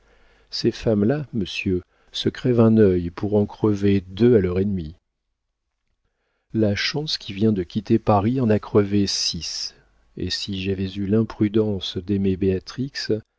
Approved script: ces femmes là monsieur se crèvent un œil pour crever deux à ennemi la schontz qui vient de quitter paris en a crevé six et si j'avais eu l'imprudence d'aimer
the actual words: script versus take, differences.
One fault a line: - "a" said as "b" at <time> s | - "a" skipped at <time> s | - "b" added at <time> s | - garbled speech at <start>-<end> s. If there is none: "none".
- "en" added at 3.4 s
- "leur" added at 4.4 s